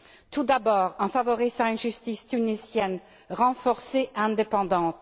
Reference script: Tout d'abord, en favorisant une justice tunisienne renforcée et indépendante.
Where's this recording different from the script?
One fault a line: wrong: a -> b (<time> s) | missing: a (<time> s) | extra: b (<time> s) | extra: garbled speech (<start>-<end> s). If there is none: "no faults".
no faults